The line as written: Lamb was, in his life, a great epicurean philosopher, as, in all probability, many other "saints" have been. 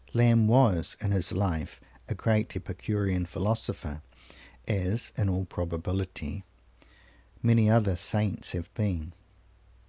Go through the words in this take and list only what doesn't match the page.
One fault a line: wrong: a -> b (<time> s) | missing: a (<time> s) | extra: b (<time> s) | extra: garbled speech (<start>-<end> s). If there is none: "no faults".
no faults